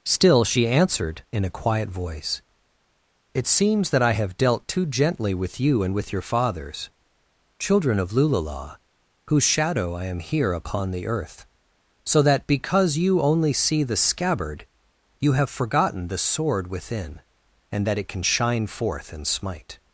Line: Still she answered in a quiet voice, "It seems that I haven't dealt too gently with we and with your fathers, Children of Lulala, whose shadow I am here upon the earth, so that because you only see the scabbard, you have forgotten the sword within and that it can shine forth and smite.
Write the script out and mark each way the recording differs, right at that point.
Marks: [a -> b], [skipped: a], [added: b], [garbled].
Still she answered in a quiet voice, "It seems that I [haven't -> have] dealt too gently with [we -> you] and with your fathers, Children of Lulala, whose shadow I am here upon the earth, so that because you only see the scabbard, you have forgotten the sword within and that it can shine forth and smite.